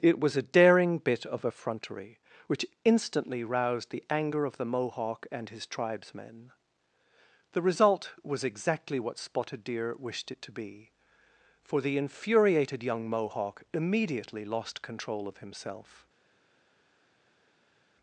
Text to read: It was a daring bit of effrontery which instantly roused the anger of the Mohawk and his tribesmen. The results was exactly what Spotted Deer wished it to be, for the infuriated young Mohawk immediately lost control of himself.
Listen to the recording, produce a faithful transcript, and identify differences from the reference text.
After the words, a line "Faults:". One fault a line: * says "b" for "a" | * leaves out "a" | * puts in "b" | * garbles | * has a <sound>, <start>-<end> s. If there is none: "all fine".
It was a daring bit of effrontery which instantly roused the anger of the Mohawk and his tribesmen. The result was exactly what Spotted Deer wished it to be, for the infuriated young Mohawk immediately lost control of himself.
Faults:
* says "result" for "results"